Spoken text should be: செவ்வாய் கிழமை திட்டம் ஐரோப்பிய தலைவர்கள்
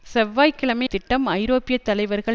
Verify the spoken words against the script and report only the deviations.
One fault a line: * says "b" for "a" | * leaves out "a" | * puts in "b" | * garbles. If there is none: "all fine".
all fine